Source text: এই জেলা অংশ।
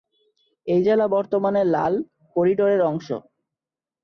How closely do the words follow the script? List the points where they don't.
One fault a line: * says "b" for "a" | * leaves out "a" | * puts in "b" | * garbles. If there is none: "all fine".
* puts in "বর্তমানে লাল করিডোরের"